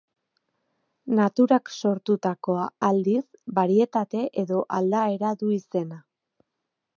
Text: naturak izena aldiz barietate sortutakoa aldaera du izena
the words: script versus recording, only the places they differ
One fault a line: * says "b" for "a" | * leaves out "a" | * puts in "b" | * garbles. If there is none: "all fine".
* says "sortutakoa" for "izena"
* says "edo" for "sortutakoa"